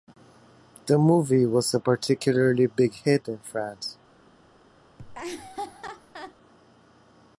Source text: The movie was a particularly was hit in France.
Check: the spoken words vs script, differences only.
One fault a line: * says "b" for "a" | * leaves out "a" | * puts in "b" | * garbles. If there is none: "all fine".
* says "big" for "was"